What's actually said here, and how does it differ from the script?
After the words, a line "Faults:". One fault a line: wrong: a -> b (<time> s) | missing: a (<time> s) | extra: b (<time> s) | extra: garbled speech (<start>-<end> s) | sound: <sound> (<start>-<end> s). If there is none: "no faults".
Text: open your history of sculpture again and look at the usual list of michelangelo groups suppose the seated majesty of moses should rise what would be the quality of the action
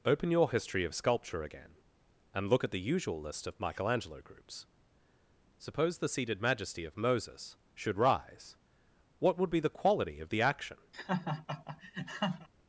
open your history of sculpture again and look at the usual list of michelangelo groups suppose the seated majesty of moses should rise what would be the quality of the action
Faults:
sound: laugh (10.9-12.5 s)